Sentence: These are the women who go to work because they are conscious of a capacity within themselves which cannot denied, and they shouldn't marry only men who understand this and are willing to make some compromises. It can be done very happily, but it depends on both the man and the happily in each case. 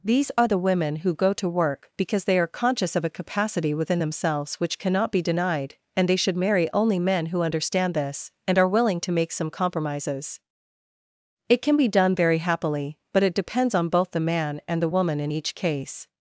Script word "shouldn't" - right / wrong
wrong